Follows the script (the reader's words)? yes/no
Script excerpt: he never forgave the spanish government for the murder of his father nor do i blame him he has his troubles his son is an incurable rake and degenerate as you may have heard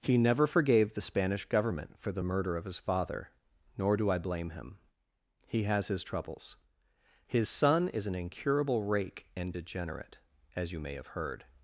yes